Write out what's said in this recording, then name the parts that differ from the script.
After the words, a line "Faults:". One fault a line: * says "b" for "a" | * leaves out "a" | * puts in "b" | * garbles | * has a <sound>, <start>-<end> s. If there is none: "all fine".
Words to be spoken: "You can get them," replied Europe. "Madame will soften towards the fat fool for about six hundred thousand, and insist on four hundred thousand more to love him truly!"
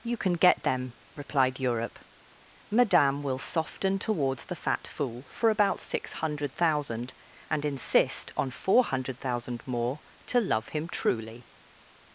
"You can get them," replied Europe. "Madame will soften towards the fat fool for about six hundred thousand, and insist on four hundred thousand more to love him truly!"
Faults:
all fine